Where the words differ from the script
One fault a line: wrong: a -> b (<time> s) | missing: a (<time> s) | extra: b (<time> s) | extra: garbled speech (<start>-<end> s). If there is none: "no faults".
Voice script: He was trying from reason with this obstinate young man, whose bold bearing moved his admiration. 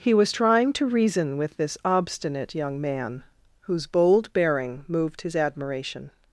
wrong: from -> to (0.7 s)